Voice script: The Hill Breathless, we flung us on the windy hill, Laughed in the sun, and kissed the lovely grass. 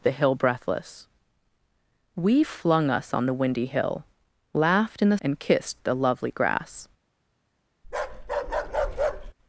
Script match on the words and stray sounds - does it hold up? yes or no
no